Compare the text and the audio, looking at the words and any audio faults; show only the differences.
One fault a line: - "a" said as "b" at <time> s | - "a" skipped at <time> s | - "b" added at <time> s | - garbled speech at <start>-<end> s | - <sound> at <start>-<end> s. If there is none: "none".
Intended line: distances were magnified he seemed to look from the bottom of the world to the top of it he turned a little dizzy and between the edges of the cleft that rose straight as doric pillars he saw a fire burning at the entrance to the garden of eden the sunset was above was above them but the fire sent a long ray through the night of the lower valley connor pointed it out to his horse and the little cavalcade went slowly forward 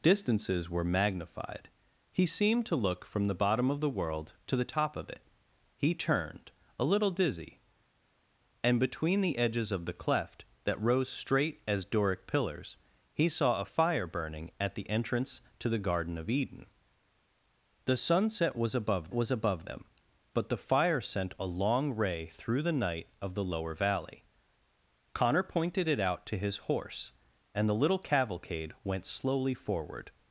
none